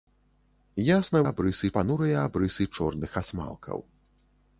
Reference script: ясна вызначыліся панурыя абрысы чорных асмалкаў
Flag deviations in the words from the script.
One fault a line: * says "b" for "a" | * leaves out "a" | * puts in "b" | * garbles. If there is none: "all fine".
* says "абрысы" for "вызначыліся"